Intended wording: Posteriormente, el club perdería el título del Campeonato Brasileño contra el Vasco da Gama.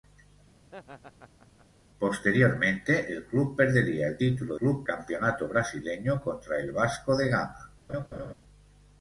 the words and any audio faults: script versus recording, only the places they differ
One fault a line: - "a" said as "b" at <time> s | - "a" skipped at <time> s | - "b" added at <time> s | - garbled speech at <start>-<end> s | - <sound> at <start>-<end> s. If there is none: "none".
- laugh at 0.6-1.7 s
- "del" said as "club" at 4.5 s
- laugh at 7.9-8.3 s